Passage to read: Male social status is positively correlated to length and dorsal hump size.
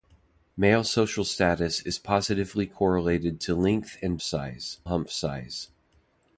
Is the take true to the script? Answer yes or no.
no